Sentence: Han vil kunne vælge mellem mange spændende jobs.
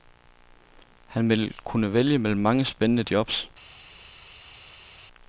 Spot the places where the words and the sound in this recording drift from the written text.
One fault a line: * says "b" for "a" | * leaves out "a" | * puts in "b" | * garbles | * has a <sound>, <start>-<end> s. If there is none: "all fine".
all fine